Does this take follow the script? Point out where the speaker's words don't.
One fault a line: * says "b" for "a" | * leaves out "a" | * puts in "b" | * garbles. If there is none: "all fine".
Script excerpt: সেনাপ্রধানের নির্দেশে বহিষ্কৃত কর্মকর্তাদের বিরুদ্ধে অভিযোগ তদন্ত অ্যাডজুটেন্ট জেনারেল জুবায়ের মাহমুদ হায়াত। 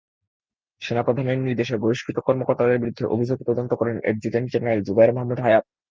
* puts in "করেন"